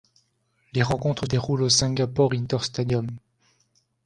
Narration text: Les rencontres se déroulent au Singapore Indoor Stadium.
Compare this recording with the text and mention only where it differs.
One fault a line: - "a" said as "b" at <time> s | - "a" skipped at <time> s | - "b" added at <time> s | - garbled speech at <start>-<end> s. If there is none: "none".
- "se" skipped at 1.3 s